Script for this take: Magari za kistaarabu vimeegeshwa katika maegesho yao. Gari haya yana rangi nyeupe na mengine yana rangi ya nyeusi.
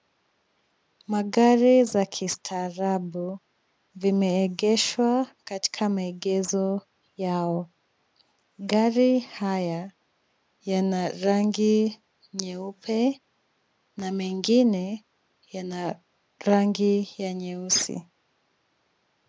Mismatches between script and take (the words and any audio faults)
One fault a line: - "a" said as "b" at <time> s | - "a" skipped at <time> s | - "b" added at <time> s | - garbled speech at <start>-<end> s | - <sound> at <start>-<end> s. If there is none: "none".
none